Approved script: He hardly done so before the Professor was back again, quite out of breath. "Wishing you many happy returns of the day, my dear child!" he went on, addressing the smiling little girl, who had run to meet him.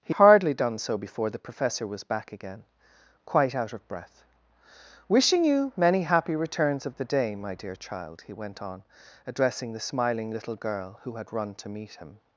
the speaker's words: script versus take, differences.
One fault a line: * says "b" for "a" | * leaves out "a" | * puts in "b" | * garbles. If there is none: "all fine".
all fine